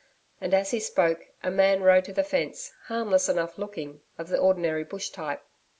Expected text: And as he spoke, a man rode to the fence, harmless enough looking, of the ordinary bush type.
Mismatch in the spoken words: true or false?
false